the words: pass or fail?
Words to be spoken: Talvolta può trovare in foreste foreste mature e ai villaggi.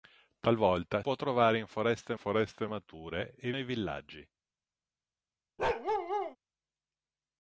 pass